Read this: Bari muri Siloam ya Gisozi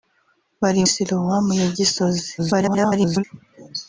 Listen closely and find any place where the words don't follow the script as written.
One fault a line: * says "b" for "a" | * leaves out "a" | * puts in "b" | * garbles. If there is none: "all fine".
* leaves out "muri"
* garbles